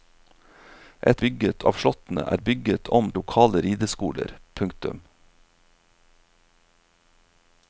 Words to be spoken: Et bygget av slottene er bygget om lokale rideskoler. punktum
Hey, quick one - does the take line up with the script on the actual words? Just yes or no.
yes